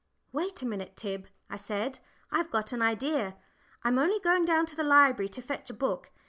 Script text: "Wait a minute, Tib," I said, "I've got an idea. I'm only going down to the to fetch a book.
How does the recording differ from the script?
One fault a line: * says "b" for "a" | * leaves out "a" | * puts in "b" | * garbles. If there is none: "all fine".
* puts in "library"